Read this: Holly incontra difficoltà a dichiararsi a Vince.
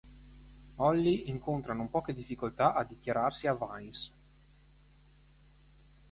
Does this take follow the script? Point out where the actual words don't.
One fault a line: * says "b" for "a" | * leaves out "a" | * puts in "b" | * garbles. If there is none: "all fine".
* puts in "non poche"